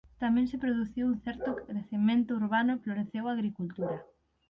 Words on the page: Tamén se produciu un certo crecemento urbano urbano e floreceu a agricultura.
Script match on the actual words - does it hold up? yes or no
no